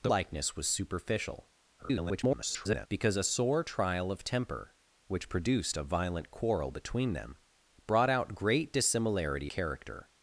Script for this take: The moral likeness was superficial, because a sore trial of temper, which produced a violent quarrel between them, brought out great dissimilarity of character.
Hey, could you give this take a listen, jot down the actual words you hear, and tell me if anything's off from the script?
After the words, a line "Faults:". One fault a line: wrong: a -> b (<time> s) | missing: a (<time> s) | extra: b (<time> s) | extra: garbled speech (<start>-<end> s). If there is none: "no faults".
The likeness was superficial, [garbled] because a sore trial of temper, which produced a violent quarrel between them, brought out great dissimilarity character.
Faults:
missing: moral (0.1 s)
extra: garbled speech (1.8-2.9 s)
missing: of (9.5 s)